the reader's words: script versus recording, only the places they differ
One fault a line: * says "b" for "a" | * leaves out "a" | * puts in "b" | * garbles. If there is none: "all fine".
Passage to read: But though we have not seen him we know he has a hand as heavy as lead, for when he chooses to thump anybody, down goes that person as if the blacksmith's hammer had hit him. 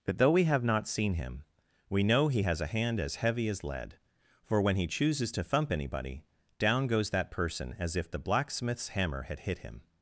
all fine